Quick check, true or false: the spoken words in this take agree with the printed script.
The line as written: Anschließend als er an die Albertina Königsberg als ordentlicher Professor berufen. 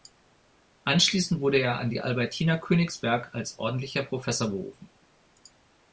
false